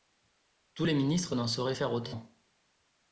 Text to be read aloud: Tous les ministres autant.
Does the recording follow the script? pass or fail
fail